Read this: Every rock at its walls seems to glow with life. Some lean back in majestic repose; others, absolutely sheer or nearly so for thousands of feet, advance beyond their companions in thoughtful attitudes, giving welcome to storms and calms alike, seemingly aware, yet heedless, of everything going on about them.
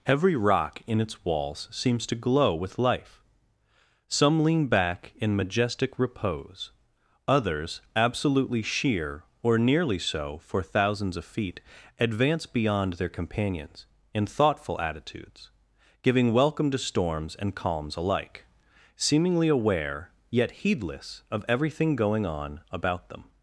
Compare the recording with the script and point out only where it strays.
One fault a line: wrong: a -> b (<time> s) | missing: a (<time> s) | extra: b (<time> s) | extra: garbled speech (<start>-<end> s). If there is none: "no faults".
wrong: at -> in (0.9 s)